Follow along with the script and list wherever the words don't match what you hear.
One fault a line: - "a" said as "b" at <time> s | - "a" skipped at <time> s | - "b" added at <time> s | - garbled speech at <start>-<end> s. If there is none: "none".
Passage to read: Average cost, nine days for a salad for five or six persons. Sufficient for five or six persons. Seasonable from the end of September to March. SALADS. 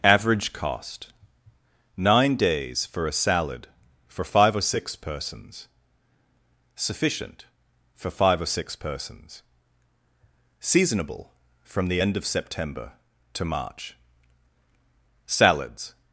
none